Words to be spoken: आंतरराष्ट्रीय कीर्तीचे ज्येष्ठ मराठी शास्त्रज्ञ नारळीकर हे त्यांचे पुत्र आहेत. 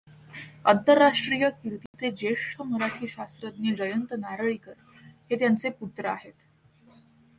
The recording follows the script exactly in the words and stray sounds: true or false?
false